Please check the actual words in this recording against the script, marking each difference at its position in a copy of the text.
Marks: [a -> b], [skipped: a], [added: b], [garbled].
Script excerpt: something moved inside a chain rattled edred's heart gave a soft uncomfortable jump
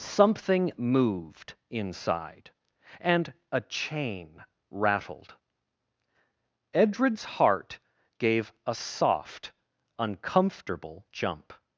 something moved inside [added: and] a chain rattled edred's heart gave a soft uncomfortable jump